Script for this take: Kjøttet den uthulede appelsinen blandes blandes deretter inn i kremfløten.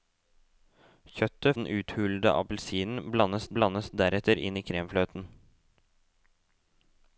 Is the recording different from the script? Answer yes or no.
no